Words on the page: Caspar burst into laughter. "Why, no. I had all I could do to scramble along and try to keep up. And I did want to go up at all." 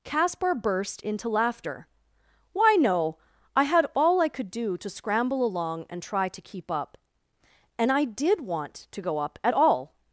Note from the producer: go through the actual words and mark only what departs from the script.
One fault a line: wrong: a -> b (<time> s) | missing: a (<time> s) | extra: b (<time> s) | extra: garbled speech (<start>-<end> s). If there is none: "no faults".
no faults